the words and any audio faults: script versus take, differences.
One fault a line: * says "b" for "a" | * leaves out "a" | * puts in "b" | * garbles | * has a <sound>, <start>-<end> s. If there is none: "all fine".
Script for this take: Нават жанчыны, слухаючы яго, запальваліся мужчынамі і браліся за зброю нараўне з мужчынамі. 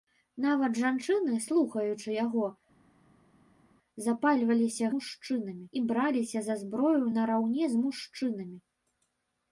all fine